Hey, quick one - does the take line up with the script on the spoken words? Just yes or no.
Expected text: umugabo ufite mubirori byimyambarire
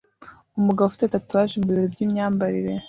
no